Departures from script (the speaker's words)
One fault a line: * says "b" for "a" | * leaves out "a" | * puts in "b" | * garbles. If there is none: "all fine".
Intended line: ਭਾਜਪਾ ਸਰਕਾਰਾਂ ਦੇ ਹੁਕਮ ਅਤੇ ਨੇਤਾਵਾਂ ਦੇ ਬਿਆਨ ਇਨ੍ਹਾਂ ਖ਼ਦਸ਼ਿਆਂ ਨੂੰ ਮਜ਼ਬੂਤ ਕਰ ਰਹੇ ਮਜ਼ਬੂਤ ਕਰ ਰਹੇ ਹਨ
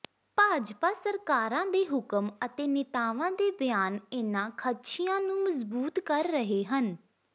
* leaves out "ਮਜ਼ਬੂਤ ਕਰ ਰਹੇ"